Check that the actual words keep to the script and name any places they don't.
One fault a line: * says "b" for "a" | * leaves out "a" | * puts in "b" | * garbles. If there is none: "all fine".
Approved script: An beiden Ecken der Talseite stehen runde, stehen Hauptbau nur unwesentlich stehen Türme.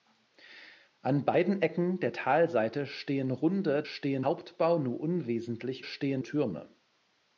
all fine